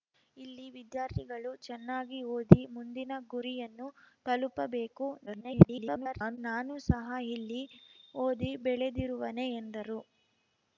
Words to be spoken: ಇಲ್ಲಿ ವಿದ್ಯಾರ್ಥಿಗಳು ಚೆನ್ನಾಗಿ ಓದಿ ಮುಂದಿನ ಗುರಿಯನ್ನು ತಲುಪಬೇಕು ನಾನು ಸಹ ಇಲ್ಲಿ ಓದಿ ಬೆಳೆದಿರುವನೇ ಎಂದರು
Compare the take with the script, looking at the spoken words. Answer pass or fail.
fail